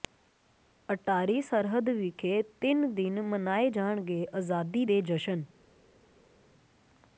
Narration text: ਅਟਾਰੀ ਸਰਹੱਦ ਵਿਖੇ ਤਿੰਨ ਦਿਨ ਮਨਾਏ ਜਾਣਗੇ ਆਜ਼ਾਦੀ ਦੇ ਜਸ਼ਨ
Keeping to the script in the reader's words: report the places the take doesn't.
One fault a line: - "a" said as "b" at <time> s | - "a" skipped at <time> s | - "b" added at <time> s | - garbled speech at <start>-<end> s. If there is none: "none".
none